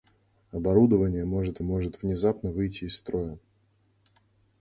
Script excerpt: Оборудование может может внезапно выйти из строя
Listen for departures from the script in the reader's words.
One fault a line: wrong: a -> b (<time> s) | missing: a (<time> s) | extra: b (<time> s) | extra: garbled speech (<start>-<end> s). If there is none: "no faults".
no faults